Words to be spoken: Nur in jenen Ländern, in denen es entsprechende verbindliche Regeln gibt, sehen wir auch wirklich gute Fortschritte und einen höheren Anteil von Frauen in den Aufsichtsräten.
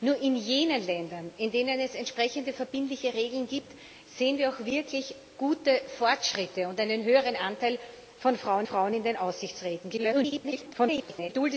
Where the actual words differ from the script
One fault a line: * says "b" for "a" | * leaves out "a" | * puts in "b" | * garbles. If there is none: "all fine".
* puts in "Frauen"
* garbles